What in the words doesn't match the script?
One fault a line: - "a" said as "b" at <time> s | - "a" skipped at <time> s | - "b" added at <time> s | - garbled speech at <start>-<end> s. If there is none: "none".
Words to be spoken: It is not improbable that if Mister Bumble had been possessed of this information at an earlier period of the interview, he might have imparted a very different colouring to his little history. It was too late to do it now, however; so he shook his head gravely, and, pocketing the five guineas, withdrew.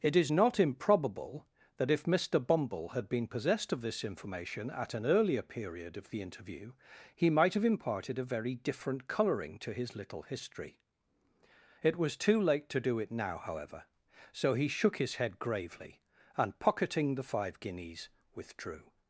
none